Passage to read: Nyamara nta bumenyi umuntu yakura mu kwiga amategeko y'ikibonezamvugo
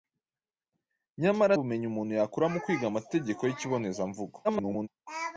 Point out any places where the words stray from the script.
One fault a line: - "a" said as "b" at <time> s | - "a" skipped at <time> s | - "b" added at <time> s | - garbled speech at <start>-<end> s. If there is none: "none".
- "nta" skipped at 1.5 s
- garbled speech at 4.4-4.9 s